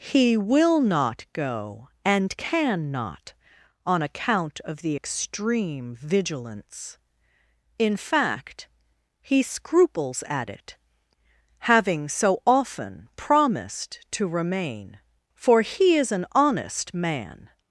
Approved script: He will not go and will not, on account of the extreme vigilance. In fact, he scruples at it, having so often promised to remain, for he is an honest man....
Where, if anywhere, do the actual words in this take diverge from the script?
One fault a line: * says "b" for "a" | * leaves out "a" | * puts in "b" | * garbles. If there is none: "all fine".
* says "can" for "will"